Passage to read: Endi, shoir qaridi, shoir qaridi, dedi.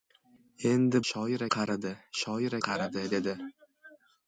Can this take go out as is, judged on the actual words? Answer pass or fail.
pass